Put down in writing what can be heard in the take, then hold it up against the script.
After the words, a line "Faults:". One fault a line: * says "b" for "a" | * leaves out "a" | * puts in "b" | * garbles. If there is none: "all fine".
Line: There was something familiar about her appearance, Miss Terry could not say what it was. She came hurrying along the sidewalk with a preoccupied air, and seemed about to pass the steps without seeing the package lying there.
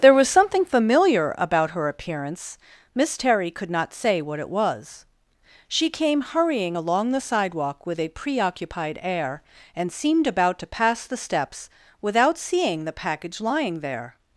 There was something familiar about her appearance, Miss Terry could not say what it was. She came hurrying along the sidewalk with a preoccupied air, and seemed about to pass the steps without seeing the package lying there.
Faults:
all fine